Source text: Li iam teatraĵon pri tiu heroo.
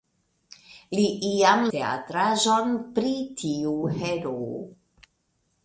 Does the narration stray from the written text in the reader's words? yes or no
no